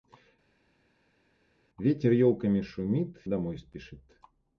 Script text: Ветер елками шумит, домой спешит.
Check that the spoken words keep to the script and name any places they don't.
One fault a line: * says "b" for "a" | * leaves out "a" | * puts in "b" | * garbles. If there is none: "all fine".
all fine